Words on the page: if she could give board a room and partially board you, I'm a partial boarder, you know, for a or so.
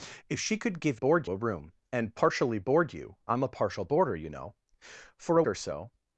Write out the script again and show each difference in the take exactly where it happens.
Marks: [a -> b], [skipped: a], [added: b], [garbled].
if she could give board a room and partially board you, I'm a partial boarder, you know, for a or so.